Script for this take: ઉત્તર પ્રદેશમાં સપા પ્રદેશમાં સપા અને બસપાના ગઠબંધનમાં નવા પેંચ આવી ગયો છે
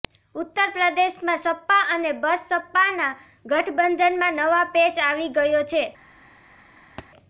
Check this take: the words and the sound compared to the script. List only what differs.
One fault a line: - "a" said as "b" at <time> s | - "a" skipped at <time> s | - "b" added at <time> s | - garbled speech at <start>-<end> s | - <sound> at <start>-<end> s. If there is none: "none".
- "પ્રદેશમાં સપા" skipped at 1.8 s
- thud at 7.0-7.1 s